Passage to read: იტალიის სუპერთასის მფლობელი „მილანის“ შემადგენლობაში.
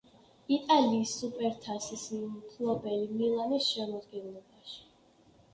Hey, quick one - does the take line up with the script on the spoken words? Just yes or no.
yes